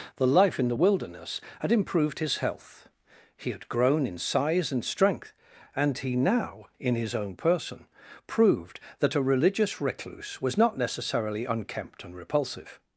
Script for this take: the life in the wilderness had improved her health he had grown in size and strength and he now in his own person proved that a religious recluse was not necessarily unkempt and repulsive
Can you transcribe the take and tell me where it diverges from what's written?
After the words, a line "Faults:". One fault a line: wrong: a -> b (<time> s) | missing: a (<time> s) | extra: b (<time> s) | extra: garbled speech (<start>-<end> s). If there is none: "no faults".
the life in the wilderness had improved his health he had grown in size and strength and he now in his own person proved that a religious recluse was not necessarily unkempt and repulsive
Faults:
wrong: her -> his (2.2 s)